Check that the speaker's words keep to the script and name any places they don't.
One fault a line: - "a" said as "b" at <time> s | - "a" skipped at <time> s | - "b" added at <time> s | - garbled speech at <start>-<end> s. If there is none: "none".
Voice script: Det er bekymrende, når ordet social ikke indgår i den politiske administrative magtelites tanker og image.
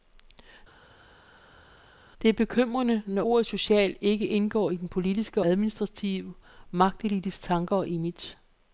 none